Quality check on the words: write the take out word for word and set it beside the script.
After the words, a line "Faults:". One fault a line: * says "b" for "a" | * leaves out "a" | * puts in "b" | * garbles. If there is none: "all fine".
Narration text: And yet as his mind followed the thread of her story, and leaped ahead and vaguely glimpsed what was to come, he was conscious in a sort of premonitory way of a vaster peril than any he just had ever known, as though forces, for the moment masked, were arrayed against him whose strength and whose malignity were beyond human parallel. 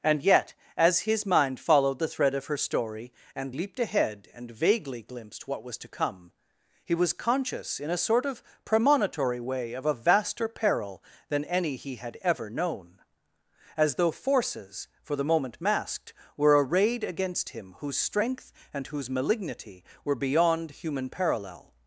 And yet as his mind followed the thread of her story, and leaped ahead and vaguely glimpsed what was to come, he was conscious in a sort of premonitory way of a vaster peril than any he had ever known, as though forces, for the moment masked, were arrayed against him whose strength and whose malignity were beyond human parallel.
Faults:
* leaves out "just"